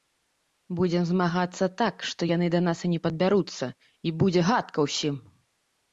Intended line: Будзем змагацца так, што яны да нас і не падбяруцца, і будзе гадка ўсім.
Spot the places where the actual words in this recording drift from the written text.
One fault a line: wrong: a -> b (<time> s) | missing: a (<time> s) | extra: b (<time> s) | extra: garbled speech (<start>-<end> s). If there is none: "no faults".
no faults